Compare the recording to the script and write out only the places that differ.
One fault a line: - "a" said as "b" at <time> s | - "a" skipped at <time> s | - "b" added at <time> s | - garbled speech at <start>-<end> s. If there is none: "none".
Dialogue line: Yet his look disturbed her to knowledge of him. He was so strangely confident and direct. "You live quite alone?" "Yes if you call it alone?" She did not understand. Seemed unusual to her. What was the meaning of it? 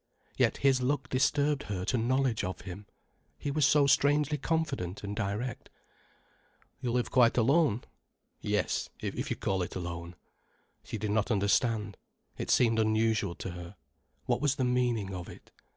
- "It" added at 12.4 s